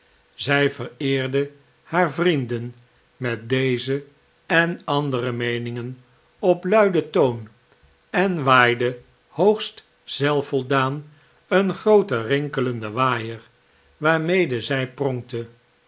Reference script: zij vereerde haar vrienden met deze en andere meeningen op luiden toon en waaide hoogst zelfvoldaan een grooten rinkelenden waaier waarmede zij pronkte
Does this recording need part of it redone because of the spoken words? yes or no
no